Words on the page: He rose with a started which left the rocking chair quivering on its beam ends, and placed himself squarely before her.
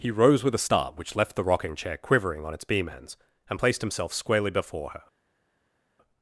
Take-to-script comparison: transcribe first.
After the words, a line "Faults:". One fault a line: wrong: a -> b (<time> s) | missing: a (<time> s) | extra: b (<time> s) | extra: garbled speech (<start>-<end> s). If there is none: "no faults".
He rose with a start which left the rocking chair quivering on its beam ends, and placed himself squarely before her.
Faults:
wrong: started -> start (0.6 s)